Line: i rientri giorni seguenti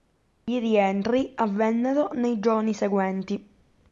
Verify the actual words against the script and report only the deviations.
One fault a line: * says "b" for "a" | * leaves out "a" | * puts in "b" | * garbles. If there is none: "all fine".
* puts in "avvennero nei"